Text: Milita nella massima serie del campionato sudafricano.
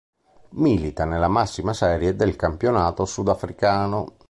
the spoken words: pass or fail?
pass